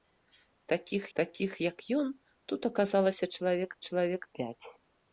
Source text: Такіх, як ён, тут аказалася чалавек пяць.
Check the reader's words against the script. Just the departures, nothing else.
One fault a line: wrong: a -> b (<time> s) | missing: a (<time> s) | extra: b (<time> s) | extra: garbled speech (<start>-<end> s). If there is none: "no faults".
extra: такіх (1.2 s)
extra: чалавек (3.9 s)